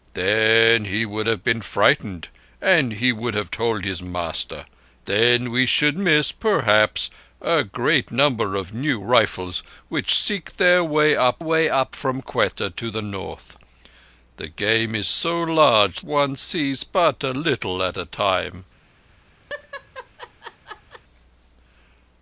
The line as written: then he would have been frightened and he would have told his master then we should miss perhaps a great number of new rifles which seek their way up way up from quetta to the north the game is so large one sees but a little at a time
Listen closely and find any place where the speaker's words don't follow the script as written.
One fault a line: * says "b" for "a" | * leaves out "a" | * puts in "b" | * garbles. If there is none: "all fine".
all fine